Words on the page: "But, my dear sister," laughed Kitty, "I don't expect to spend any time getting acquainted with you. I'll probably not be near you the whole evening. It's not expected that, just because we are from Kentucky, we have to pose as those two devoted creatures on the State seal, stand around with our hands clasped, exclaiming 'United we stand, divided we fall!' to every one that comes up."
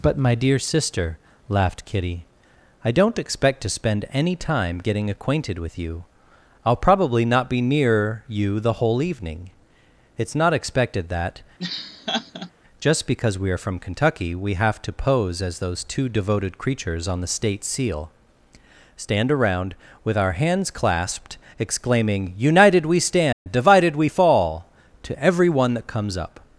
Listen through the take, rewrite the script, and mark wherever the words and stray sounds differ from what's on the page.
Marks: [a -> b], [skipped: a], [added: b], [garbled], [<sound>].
"But, my dear sister," laughed Kitty, "I don't expect to spend any time getting acquainted with you. I'll probably not be near you the whole evening. It's not expected that, [laugh] just because we are from Kentucky, we have to pose as those two devoted creatures on the State seal, stand around with our hands clasped, exclaiming 'United we stand, [dropout] divided we fall!' to every one that comes up."